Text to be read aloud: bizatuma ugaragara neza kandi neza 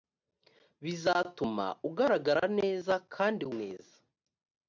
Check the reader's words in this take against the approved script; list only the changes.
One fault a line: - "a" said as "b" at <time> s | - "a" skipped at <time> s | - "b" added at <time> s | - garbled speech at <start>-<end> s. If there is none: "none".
none